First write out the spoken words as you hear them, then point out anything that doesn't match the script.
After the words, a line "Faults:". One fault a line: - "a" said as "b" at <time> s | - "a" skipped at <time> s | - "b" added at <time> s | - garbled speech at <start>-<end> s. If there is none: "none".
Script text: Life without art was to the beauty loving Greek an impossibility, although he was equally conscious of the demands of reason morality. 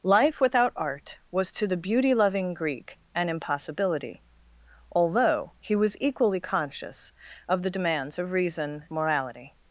Life without art was to the beauty loving Greek an impossibility, although he was equally conscious of the demands of reason morality.
Faults:
none